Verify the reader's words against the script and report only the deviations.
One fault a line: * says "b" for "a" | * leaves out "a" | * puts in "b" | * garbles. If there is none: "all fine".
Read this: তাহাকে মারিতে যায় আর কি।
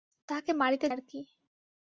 * leaves out "যায়"